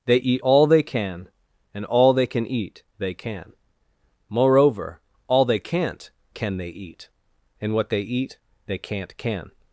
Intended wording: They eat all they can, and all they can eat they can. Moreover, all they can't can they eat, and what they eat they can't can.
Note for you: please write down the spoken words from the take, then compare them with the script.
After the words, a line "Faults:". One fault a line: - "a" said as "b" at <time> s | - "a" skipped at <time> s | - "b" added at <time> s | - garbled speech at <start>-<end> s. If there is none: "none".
They eat all they can, and all they can eat they can. Moreover, all they can't can they eat, and what they eat they can't can.
Faults:
none